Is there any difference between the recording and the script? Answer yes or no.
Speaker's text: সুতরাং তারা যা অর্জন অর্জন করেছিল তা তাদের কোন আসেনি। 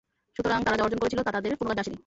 yes